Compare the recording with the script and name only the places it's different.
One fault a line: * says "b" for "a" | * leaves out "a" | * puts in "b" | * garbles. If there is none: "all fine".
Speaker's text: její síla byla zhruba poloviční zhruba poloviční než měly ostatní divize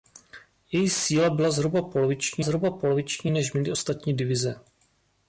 all fine